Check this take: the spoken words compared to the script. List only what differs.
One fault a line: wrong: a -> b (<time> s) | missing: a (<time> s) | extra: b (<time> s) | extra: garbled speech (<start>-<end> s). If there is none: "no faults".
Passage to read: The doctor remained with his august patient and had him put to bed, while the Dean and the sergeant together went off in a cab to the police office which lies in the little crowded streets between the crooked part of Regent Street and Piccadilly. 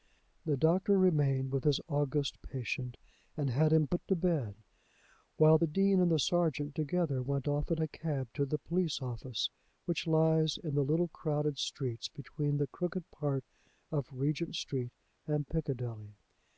no faults